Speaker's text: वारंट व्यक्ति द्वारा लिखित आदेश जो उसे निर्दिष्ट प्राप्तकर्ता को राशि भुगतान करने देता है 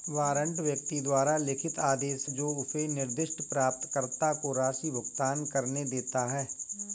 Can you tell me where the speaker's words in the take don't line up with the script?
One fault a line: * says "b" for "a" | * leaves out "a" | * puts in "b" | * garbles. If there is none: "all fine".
all fine